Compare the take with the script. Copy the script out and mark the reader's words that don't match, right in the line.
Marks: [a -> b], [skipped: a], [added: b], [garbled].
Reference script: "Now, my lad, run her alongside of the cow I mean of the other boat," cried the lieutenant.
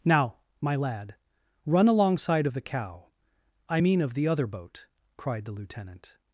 "Now, my lad, run [skipped: her] alongside of the cow I mean of the other boat," cried the lieutenant.